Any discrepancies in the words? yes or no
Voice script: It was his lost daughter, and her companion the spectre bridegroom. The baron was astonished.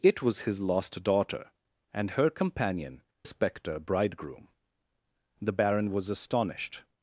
yes